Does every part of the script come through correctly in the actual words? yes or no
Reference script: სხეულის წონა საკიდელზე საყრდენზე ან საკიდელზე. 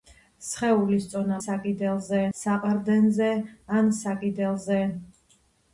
yes